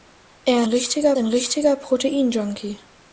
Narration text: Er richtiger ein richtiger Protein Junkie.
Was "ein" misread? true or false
false